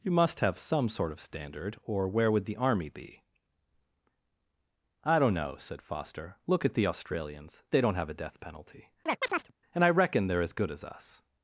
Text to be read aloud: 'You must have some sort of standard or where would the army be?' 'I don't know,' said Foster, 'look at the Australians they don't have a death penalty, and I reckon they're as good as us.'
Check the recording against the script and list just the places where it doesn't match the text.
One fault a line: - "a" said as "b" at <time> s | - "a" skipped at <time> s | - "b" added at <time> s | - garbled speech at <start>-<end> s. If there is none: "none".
none